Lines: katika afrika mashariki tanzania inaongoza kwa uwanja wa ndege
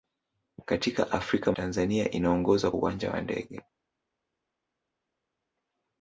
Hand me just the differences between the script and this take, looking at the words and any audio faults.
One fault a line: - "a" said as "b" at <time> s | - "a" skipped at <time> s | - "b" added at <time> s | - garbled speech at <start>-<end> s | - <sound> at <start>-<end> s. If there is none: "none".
- "mashariki" skipped at 1.5 s
- "kwa" skipped at 2.7 s